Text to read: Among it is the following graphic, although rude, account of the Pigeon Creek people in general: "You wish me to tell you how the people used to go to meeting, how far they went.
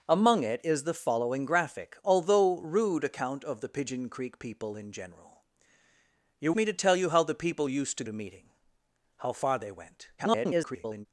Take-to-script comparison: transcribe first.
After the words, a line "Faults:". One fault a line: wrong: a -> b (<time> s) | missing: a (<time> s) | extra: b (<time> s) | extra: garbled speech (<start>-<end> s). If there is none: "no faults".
Among it is the following graphic, although rude, account of the Pigeon Creek people in general: "You me to tell you how the people used to to meeting, how far they went. [garbled]
Faults:
missing: wish (6.5 s)
missing: go (8.0 s)
extra: garbled speech (10.2-11.1 s)